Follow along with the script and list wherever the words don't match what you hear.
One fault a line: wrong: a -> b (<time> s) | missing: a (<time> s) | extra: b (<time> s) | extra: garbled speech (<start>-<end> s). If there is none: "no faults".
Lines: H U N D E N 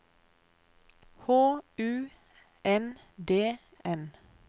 missing: E (3.6 s)